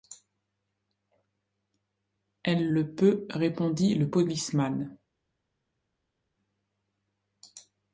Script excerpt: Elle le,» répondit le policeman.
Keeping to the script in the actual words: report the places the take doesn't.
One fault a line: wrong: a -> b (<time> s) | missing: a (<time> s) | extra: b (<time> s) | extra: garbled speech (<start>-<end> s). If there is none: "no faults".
extra: peut (2.9 s)